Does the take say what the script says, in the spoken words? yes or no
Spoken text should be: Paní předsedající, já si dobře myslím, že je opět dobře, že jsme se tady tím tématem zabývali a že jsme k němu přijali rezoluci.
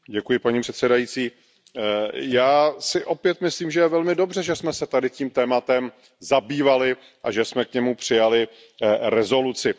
no